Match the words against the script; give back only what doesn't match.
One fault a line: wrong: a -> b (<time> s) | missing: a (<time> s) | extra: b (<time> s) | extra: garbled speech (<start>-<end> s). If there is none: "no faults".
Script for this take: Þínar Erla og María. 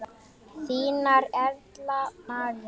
missing: og (2.0 s)